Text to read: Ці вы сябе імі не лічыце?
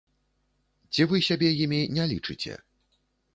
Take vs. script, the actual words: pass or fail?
pass